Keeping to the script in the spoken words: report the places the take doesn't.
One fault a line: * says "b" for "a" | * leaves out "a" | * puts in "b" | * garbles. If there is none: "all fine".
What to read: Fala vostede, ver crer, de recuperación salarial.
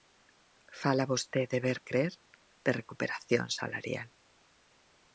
all fine